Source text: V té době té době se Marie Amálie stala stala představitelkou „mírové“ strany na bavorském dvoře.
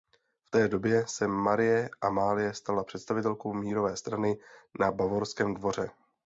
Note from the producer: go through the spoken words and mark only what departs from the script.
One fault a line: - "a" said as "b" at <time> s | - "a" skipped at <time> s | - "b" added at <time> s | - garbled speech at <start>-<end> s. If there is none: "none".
- "té době" skipped at 1.1 s
- "stala" skipped at 2.8 s